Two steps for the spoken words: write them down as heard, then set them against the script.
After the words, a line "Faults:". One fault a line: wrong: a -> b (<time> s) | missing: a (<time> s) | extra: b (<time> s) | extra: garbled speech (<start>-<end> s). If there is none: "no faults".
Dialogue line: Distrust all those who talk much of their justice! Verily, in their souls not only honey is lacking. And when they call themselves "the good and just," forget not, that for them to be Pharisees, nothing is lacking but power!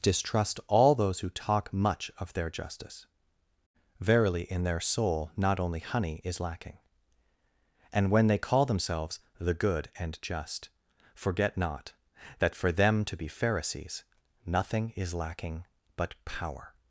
Distrust all those who talk much of their justice! Verily, in their soul not only honey is lacking. And when they call themselves "the good and just," forget not, that for them to be Pharisees, nothing is lacking but power!
Faults:
wrong: souls -> soul (4.8 s)